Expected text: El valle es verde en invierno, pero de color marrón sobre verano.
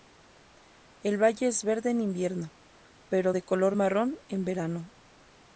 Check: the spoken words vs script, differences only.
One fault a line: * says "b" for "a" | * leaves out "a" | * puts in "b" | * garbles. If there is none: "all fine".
* says "en" for "sobre"